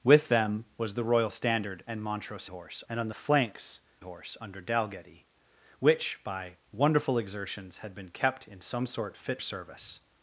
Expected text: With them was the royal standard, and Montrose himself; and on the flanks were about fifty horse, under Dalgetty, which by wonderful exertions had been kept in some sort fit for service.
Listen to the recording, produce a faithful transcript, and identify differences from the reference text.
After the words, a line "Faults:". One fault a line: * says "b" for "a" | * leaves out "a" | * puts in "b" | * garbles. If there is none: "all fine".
With them was the royal standard, and Montrose horse; and on the flanks horse, under Dalgetty, which by wonderful exertions had been kept in some sort fit service.
Faults:
* says "horse" for "himself"
* leaves out "were about fifty"
* leaves out "for"